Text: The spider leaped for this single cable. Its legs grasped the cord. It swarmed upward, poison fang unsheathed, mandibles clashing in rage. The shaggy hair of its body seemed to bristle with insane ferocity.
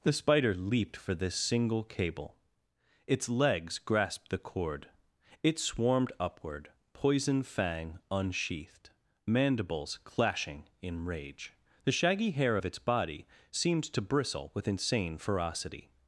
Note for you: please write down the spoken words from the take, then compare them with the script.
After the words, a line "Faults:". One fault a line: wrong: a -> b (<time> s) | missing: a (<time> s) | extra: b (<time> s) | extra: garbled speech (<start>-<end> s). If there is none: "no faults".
The spider leaped for this single cable. Its legs grasped the cord. It swarmed upward, poison fang unsheathed, mandibles clashing in rage. The shaggy hair of its body seemed to bristle with insane ferocity.
Faults:
no faults